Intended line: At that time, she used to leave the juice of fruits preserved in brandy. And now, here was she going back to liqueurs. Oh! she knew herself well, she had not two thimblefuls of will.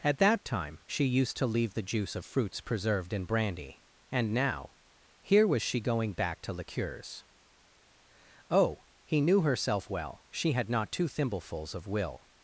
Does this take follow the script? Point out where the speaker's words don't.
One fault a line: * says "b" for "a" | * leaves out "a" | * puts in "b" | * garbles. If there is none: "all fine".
* says "he" for "she"